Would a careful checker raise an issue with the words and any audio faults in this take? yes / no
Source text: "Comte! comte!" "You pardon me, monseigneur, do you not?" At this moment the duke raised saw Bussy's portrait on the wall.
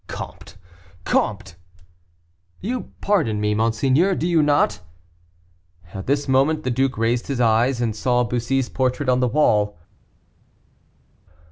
yes